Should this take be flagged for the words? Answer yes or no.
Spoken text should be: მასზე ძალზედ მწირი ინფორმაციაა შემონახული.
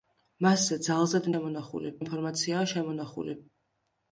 yes